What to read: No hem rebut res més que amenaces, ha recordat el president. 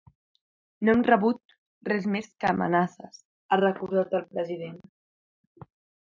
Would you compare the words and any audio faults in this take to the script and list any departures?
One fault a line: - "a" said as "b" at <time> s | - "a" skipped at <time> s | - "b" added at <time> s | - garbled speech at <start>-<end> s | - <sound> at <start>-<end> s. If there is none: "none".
none